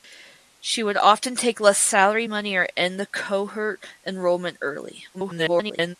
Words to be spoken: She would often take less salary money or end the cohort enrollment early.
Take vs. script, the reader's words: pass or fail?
fail